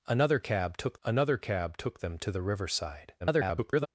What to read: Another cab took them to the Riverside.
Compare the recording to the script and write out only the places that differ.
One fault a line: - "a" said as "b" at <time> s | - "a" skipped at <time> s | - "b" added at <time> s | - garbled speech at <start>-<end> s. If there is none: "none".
- "another cab took" added at 1.0 s
- garbled speech at 3.2-3.9 s